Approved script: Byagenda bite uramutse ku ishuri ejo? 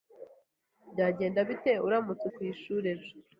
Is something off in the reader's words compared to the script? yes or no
no